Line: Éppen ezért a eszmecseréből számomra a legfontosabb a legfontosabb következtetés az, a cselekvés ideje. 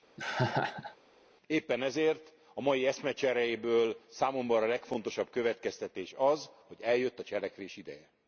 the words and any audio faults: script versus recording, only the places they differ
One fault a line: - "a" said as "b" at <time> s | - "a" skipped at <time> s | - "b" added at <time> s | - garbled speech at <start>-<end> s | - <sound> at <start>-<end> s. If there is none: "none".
- laugh at 0.2-1.0 s
- "mai" added at 2.6 s
- "a legfontosabb következtetés az" said as "következtetés az hogy eljött" at 5.3 s